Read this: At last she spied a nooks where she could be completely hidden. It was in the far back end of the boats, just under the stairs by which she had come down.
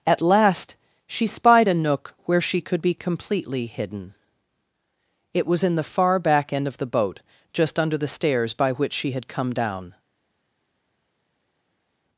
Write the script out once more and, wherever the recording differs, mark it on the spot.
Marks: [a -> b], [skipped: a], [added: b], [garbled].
At last she spied a [nooks -> nook] where she could be completely hidden. It was in the far back end of the [boats, -> boat] just under the stairs by which she had come down.